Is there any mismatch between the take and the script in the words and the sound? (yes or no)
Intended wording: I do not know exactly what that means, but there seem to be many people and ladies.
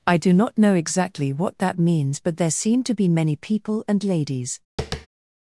yes